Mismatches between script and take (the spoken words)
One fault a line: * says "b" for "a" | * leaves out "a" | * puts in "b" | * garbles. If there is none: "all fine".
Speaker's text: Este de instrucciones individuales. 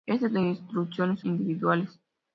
all fine